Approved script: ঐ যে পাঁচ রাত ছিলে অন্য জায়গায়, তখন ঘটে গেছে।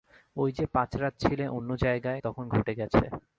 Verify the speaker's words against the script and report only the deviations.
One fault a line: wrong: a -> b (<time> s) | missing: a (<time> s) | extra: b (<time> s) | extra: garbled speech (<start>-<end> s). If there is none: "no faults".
no faults